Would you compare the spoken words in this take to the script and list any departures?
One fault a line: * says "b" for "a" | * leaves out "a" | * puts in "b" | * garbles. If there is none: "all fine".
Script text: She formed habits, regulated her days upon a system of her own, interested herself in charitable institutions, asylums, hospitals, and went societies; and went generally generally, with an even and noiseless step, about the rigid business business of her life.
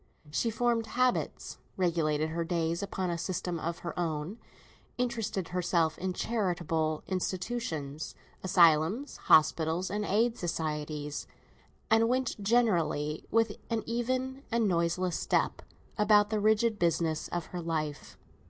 * says "aid" for "went"
* leaves out "generally"
* leaves out "business"